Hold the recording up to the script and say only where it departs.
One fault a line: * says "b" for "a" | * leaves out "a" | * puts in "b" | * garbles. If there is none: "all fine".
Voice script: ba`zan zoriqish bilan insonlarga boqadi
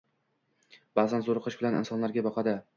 all fine